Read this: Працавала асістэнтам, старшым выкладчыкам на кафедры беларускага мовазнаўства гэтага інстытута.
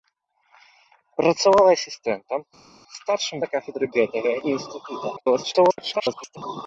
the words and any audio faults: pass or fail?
fail